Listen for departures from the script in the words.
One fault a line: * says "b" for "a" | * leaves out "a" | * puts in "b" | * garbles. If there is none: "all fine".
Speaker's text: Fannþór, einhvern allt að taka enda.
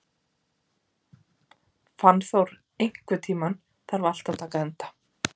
* puts in "tímann þarf"